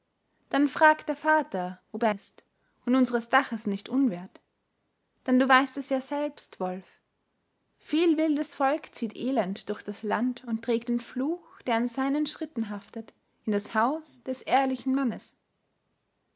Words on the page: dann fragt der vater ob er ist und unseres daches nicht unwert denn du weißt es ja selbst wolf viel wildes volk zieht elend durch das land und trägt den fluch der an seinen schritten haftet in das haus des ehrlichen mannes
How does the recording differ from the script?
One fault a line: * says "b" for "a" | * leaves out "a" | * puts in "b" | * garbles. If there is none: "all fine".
all fine